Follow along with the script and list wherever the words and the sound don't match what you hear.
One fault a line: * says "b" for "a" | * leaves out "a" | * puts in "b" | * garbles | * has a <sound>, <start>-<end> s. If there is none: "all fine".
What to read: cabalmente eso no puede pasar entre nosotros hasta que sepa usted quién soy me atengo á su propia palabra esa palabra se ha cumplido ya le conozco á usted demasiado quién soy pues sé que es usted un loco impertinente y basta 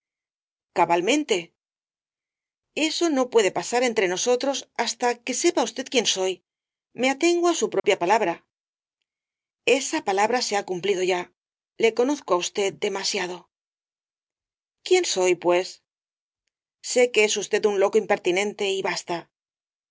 * has a dropout, 7.8-7.8 s